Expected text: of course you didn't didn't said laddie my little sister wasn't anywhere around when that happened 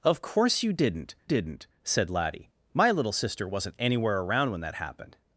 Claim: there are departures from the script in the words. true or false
false